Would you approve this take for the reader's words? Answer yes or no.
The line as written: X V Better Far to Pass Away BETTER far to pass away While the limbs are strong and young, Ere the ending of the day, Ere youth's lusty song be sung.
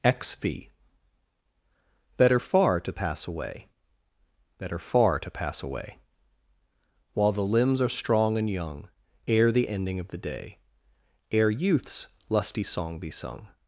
yes